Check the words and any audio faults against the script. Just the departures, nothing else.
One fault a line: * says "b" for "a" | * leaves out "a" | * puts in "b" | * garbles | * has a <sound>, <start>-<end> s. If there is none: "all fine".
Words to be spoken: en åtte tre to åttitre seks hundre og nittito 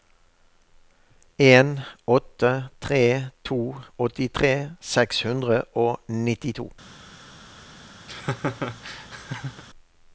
* has a laugh, 8.1-9.6 s